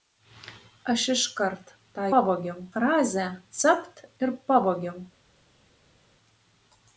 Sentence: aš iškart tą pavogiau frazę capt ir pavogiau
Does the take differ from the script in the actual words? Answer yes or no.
no